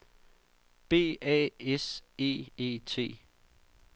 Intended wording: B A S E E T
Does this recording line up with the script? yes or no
yes